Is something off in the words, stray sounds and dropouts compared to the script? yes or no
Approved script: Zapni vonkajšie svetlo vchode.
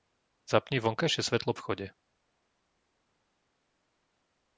no